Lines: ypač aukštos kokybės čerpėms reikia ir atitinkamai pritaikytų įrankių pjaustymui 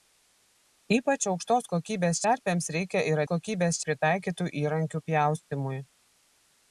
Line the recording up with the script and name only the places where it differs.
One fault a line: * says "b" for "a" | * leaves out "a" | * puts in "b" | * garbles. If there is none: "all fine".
* says "kokybės" for "atitinkamai"